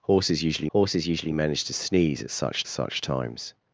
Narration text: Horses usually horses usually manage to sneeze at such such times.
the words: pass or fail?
pass